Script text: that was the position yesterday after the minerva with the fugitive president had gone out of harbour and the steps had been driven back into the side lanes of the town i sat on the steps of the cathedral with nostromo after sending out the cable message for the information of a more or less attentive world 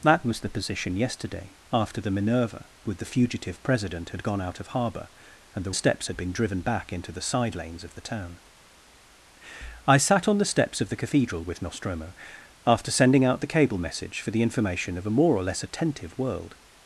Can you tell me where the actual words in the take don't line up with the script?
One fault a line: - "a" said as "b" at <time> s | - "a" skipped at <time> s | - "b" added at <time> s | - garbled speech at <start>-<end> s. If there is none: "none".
none